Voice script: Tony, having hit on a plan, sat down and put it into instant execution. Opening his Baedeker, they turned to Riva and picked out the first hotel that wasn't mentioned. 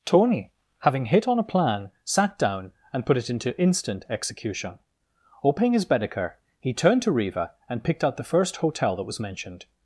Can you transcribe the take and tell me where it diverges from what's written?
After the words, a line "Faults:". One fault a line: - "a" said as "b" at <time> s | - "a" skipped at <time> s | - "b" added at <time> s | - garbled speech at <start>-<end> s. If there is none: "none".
Tony, having hit on a plan, sat down and put it into instant execution. Opening his Baedeker, he turned to Riva and picked out the first hotel that was mentioned.
Faults:
- "they" said as "he" at 6.6 s
- "wasn't" said as "was" at 9.0 s